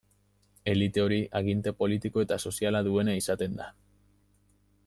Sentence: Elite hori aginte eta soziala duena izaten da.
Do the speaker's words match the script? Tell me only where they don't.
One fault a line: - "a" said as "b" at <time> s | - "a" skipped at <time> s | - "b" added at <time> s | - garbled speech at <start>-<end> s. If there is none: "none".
- "politiko" added at 1.8 s